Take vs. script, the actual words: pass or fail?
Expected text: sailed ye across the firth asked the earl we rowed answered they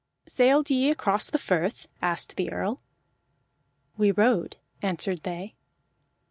pass